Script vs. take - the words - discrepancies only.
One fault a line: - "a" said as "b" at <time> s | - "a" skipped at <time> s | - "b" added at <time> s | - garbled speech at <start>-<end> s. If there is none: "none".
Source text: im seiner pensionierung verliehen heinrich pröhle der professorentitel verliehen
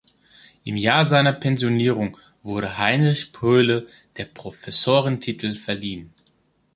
- "jahr" added at 0.8 s
- "verliehen" said as "wurde" at 2.4 s